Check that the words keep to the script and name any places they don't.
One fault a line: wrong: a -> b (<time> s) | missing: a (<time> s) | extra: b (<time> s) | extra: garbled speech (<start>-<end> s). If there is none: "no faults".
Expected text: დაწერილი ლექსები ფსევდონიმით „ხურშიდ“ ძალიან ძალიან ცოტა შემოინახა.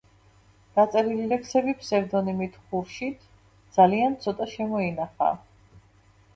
missing: ძალიან (4.2 s)